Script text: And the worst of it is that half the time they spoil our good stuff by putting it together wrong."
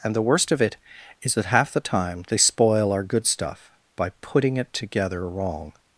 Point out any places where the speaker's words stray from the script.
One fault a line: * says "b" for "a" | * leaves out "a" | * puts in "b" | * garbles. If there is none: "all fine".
all fine